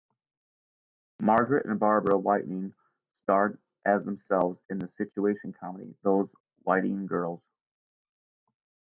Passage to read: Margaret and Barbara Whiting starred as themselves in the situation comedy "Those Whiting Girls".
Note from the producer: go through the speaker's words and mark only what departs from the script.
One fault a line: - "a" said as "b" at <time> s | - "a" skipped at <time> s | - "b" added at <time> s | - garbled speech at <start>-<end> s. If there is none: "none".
none